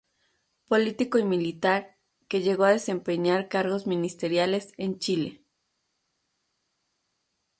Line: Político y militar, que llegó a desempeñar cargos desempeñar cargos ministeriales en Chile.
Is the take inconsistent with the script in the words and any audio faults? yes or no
yes